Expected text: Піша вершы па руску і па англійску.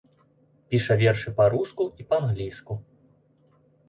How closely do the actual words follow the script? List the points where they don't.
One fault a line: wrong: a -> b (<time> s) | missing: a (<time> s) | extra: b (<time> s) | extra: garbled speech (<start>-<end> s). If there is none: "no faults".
no faults